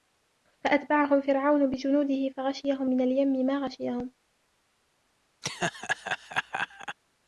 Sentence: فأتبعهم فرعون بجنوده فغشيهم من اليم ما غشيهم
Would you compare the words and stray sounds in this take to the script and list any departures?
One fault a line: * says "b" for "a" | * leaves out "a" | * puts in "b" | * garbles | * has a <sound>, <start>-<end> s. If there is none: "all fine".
* has a laugh, 5.4-7.0 s